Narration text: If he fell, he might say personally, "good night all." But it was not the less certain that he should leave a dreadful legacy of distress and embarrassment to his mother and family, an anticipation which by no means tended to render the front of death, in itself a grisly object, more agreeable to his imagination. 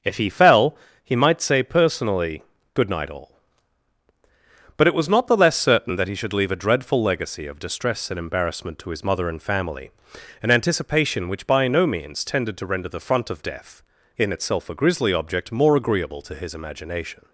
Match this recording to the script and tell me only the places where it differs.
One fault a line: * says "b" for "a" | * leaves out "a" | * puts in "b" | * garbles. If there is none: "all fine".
all fine